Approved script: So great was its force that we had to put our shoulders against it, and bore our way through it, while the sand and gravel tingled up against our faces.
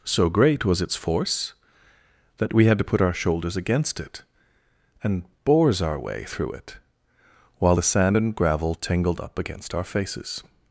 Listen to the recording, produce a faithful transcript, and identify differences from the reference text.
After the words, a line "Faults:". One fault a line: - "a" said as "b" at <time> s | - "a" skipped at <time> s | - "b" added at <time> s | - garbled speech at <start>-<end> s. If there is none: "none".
So great was its force that we had to put our shoulders against it, and bores our way through it, while the sand and gravel tingled up against our faces.
Faults:
- "bore" said as "bores" at 5.4 s